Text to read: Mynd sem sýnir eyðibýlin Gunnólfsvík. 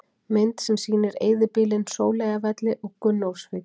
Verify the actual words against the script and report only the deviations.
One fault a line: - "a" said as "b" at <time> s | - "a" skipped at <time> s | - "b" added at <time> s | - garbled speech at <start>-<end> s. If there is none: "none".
- "Sóleyjarvelli og" added at 2.0 s